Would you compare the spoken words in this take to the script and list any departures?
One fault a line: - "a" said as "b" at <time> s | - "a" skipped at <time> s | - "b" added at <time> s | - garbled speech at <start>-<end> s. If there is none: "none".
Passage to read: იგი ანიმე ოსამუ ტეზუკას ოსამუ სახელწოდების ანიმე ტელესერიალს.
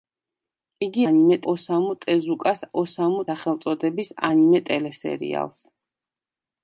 none